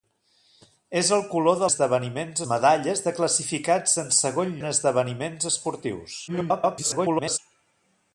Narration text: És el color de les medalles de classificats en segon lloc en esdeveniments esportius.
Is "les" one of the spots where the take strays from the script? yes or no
yes